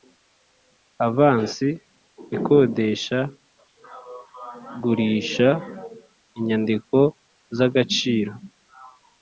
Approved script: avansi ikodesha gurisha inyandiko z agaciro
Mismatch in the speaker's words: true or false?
false